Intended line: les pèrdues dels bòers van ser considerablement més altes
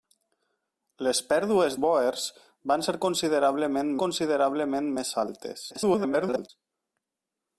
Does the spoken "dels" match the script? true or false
false